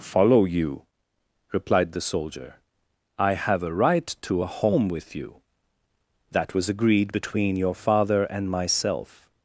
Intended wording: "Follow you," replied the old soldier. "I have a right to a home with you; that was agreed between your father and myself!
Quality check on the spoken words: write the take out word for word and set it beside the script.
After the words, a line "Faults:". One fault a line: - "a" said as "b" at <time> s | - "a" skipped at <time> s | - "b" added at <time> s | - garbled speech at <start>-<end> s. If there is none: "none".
"Follow you," replied the soldier. "I have a right to a home with you; that was agreed between your father and myself!
Faults:
- "old" skipped at 2.0 s